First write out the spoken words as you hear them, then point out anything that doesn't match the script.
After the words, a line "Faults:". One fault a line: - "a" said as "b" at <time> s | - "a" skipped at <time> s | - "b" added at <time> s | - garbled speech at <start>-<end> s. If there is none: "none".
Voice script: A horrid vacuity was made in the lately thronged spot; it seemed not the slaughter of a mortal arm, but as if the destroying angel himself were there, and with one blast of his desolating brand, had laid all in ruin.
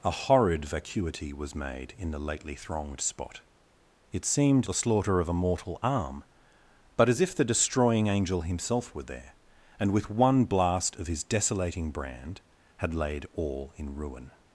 A horrid vacuity was made in the lately thronged spot; it seemed the slaughter of a mortal arm, but as if the destroying angel himself were there, and with one blast of his desolating brand, had laid all in ruin.
Faults:
- "not" skipped at 4.7 s